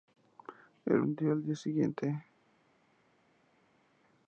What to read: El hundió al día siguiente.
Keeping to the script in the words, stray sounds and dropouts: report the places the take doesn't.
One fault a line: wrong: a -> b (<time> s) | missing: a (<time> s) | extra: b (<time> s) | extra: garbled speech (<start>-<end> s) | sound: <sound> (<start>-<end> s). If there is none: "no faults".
no faults